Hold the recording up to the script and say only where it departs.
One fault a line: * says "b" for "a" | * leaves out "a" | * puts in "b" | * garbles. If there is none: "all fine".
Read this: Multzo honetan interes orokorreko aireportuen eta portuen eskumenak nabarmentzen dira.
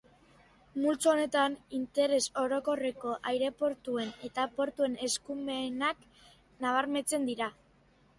all fine